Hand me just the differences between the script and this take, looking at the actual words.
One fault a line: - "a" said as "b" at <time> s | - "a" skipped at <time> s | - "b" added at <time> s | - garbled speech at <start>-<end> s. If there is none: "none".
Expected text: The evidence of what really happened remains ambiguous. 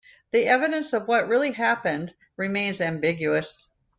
none